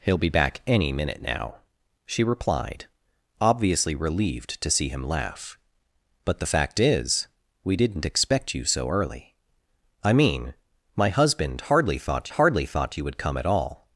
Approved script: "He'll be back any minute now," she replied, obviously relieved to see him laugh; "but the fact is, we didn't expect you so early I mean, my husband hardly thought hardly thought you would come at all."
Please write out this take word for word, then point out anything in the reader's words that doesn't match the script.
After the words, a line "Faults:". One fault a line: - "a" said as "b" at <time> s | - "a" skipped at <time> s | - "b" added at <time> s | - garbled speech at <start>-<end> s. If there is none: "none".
"He'll be back any minute now," she replied, obviously relieved to see him laugh; "but the fact is, we didn't expect you so early I mean, my husband hardly thought hardly thought you would come at all."
Faults:
none